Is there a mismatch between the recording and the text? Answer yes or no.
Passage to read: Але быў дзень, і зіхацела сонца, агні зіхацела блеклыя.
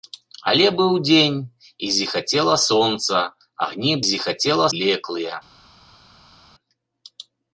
no